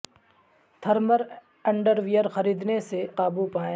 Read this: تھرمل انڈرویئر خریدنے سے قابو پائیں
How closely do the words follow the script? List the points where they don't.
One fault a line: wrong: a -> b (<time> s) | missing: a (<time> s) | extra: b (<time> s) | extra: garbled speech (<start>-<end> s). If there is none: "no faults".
no faults